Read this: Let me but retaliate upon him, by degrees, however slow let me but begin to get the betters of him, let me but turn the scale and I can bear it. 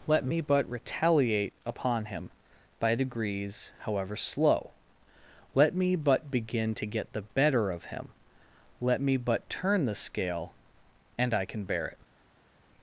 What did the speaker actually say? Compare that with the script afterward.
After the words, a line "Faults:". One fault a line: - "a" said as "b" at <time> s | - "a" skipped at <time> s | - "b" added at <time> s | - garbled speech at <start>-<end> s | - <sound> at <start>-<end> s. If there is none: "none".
Let me but retaliate upon him, by degrees, however slow let me but begin to get the better of him, let me but turn the scale and I can bear it.
Faults:
- "betters" said as "better" at 7.3 s